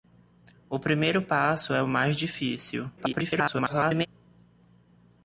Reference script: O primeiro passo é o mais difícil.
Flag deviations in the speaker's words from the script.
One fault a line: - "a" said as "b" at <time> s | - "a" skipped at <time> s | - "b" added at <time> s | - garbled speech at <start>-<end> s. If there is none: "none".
- garbled speech at 3.0-4.1 s